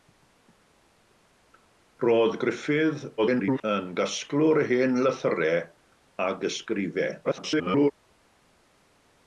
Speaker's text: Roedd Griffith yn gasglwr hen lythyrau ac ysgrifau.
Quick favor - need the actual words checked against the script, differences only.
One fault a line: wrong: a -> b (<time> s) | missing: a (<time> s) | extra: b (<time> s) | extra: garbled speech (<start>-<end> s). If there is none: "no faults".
extra: garbled speech (3.2-3.6 s)
extra: garbled speech (7.2-7.9 s)